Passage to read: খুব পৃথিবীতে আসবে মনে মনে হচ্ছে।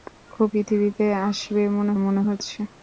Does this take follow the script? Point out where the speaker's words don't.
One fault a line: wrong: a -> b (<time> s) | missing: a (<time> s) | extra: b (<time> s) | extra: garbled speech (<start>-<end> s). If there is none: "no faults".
no faults